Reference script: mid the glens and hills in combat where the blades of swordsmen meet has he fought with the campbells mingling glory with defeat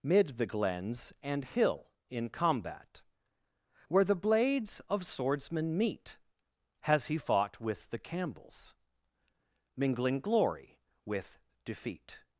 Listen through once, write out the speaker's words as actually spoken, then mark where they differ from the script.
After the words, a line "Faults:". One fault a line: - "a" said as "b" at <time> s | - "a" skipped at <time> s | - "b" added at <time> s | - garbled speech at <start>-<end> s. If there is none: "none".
mid the glens and hill in combat where the blades of swordsmen meet has he fought with the campbells mingling glory with defeat
Faults:
- "hills" said as "hill" at 1.4 s